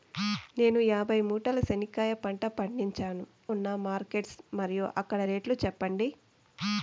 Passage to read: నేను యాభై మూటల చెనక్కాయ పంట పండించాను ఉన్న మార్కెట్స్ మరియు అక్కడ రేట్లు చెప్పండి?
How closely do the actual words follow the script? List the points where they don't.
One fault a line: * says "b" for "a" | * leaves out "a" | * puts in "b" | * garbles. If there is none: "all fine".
all fine